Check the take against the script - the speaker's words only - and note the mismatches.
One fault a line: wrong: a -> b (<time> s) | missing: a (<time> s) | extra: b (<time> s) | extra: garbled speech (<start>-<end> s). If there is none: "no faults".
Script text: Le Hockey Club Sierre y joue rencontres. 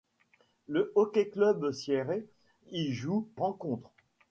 no faults